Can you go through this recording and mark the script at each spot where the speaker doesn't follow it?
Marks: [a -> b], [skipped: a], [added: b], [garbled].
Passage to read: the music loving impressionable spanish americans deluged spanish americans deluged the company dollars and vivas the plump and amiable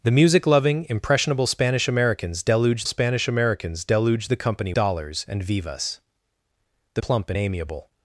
the music loving impressionable spanish americans deluged spanish americans deluged the company dollars and vivas the plump and amiable